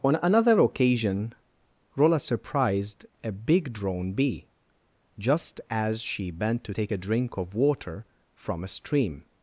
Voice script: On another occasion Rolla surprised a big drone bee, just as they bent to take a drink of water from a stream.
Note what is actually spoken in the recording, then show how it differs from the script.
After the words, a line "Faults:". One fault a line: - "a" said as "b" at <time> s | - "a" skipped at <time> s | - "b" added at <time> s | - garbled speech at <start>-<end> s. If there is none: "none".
On another occasion Rolla surprised a big drone bee, just as she bent to take a drink of water from a stream.
Faults:
- "they" said as "she" at 6.0 s